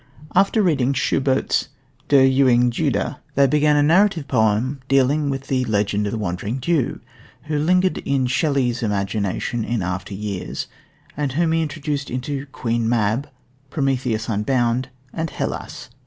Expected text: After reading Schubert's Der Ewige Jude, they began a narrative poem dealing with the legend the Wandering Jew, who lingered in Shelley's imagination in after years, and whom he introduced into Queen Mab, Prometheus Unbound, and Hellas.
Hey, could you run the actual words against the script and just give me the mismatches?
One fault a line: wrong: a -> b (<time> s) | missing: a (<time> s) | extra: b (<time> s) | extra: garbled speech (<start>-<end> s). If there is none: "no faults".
no faults